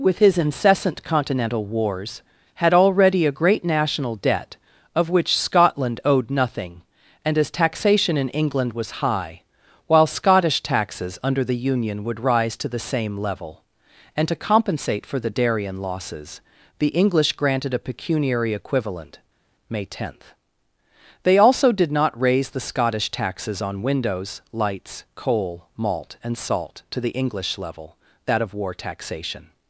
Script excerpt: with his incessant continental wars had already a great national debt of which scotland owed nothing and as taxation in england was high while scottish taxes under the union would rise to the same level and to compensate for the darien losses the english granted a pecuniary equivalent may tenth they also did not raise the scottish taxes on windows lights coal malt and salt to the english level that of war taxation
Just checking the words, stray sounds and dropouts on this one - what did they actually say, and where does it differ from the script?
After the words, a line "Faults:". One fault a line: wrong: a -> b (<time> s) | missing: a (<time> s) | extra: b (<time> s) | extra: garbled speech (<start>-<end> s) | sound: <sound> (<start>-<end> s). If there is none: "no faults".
with his incessant continental wars had already a great national debt of which scotland owed nothing and as taxation in england was high while scottish taxes under the union would rise to the same level and to compensate for the darien losses the english granted a pecuniary equivalent may tenth they also did not raise the scottish taxes on windows lights coal malt and salt to the english level that of war taxation
Faults:
no faults